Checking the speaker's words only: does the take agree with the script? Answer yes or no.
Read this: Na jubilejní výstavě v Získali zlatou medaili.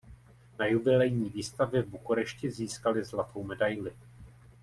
no